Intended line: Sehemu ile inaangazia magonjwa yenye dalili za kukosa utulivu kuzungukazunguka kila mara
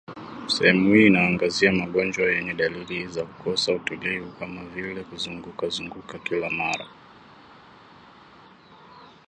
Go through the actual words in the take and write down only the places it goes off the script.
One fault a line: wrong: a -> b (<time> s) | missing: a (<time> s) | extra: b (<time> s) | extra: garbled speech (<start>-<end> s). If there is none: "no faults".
wrong: ile -> hii (0.9 s)
extra: kama vile (4.3 s)